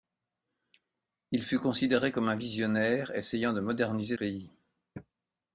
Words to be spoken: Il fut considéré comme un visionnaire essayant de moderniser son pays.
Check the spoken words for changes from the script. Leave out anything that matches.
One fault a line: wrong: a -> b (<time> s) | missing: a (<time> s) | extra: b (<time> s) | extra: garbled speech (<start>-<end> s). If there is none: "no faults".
missing: son (4.2 s)